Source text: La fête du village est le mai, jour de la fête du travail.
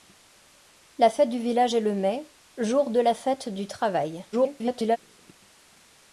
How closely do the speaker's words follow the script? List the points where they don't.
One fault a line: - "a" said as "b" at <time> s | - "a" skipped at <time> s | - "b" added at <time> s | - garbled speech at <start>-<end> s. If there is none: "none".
- garbled speech at 4.3-5.0 s